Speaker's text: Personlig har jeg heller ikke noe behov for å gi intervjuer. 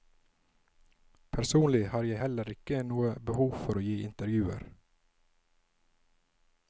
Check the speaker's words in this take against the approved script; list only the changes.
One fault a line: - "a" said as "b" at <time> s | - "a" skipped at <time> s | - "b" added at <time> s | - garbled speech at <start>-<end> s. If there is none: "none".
none